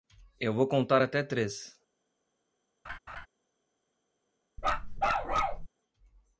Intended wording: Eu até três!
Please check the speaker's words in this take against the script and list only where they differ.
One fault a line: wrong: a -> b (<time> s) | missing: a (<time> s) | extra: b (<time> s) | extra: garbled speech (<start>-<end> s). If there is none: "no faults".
extra: vou contar (0.5 s)